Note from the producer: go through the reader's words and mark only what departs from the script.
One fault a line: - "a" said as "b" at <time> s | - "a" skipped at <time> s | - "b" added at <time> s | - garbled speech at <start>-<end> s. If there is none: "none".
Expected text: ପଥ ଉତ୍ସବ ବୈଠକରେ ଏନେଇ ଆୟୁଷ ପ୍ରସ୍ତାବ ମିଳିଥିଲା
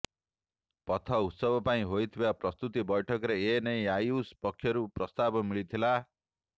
- "ପାଇଁ ହୋଇଥିବା ପ୍ରସ୍ତୁତି" added at 1.6 s
- "ପକ୍ଷରୁ" added at 4.4 s